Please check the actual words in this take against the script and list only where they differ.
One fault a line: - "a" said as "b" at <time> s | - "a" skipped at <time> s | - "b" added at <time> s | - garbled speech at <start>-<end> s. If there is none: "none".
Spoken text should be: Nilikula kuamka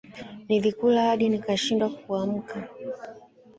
- "hadi nikashindwa" added at 1.1 s